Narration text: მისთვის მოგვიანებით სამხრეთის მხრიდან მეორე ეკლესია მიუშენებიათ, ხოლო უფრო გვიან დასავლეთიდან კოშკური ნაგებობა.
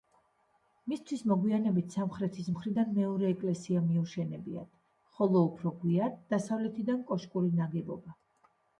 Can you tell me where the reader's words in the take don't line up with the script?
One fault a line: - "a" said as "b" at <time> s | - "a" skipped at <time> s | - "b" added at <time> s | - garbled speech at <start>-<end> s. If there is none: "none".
none